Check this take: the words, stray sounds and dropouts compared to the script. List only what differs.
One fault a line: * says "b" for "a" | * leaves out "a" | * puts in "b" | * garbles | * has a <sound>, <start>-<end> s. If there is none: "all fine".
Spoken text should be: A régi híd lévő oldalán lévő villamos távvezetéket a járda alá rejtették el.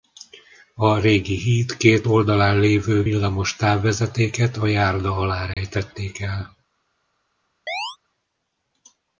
* says "két" for "lévő"
* has a dropout, 5.5-5.6 s
* has a chirp, 7.7-8.0 s